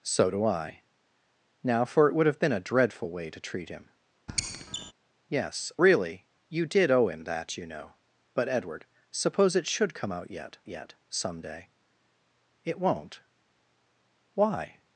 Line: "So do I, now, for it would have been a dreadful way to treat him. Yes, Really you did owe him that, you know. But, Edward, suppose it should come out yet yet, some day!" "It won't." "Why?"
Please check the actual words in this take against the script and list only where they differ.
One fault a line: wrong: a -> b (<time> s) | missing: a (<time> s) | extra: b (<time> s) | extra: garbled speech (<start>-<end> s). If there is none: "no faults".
no faults